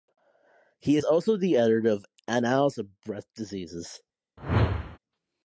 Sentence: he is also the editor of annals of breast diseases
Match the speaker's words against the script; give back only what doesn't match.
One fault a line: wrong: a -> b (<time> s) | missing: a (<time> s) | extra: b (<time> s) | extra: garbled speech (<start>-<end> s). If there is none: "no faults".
no faults